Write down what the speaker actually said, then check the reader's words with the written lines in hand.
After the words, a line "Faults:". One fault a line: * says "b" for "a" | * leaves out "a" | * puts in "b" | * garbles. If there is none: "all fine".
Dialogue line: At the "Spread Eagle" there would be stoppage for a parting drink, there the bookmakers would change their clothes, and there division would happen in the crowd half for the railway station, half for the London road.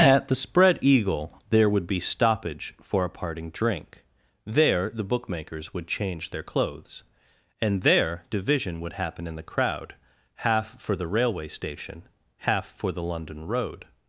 At the "Spread Eagle" there would be stoppage for a parting drink, there the bookmakers would change their clothes, and there division would happen in the crowd half for the railway station, half for the London road.
Faults:
all fine